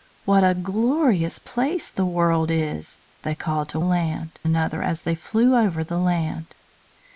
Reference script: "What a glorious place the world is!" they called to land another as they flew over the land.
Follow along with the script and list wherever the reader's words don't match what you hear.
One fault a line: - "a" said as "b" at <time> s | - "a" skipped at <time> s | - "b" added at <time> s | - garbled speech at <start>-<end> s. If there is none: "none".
none